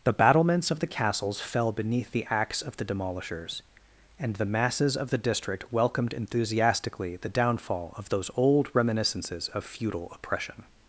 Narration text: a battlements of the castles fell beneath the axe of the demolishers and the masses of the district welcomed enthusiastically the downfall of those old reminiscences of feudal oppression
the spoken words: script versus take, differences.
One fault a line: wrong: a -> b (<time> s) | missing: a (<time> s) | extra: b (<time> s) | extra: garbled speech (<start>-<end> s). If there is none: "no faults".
wrong: a -> the (0.0 s)